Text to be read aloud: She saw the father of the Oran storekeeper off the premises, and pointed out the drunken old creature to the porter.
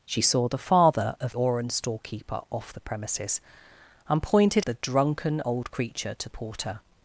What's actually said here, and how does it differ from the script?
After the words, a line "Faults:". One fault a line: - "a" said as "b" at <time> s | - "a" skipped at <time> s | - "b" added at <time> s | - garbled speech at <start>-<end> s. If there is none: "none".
She saw the father of Oran storekeeper off the premises, and pointed the drunken old creature to porter.
Faults:
- "the" skipped at 1.3 s
- "out" skipped at 4.7 s
- "the" skipped at 6.3 s